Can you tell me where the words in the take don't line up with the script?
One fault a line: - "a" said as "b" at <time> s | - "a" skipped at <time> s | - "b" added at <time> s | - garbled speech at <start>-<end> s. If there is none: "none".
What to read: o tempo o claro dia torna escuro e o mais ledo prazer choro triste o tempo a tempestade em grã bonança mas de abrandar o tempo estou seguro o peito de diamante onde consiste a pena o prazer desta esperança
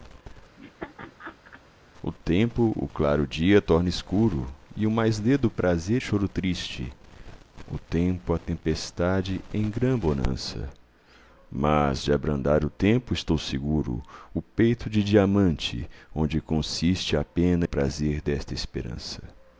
none